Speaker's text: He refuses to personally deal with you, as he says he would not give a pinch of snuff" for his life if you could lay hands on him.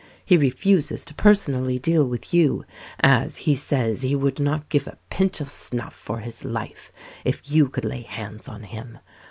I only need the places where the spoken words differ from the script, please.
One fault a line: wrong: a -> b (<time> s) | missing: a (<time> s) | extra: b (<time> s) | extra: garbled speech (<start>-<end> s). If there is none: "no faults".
no faults